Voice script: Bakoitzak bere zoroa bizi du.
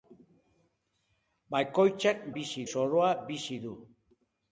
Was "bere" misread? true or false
true